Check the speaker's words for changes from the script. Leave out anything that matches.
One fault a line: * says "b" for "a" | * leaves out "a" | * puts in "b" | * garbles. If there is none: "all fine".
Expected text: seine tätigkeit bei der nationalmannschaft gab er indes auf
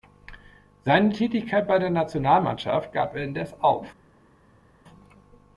all fine